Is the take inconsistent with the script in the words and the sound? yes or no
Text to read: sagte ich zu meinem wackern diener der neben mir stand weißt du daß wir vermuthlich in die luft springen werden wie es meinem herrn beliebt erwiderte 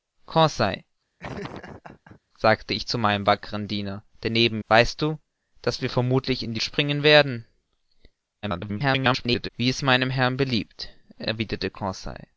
yes